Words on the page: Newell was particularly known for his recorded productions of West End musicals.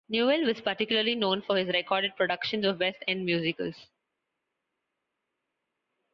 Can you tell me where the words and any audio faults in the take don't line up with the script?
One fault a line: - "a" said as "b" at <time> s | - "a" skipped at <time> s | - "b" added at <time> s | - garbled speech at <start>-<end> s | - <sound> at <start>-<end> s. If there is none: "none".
none